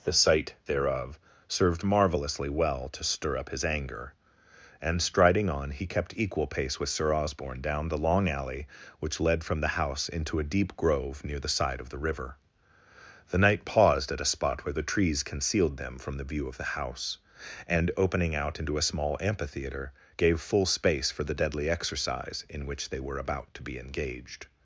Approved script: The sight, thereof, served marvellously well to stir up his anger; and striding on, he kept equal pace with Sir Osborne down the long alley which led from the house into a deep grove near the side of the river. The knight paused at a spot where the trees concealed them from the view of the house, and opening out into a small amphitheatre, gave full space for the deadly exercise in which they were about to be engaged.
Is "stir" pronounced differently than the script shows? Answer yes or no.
no